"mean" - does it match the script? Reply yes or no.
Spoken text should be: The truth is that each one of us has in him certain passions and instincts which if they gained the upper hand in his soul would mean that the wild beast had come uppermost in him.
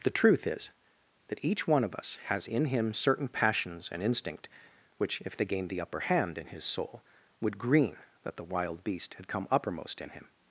no